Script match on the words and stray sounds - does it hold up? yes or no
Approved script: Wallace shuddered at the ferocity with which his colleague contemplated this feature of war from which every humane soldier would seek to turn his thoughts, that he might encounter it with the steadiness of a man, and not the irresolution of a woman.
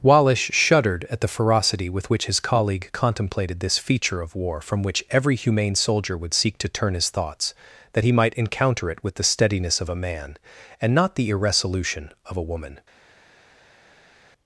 yes